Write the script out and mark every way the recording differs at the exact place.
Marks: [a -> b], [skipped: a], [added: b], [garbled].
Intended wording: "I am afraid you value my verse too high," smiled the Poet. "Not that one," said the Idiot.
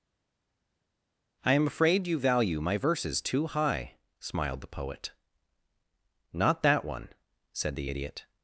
"I am afraid you value my [verse -> verses] too high," smiled the Poet. "Not that one," said the Idiot.